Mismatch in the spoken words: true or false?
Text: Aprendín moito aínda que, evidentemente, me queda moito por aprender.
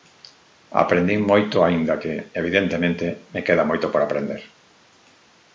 false